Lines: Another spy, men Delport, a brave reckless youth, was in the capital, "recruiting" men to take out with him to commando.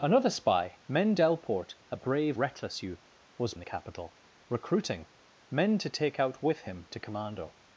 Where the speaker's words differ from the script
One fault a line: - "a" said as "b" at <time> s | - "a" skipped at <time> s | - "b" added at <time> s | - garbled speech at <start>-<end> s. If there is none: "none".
none